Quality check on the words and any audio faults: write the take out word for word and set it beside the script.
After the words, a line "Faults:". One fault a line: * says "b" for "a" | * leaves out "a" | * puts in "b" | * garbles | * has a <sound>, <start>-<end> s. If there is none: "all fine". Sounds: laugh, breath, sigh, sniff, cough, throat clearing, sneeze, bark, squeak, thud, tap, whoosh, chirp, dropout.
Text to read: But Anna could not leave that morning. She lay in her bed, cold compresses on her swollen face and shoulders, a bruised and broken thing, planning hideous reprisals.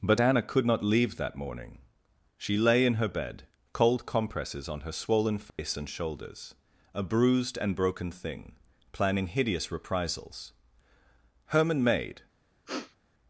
But Anna could not leave that morning. She lay in her bed, cold compresses on her swollen face and shoulders, a bruised and broken thing, planning hideous reprisals. Herman made
Faults:
* has a dropout, 5.5-5.6 s
* puts in "Herman made"
* has a sniff, 12.7-13.0 s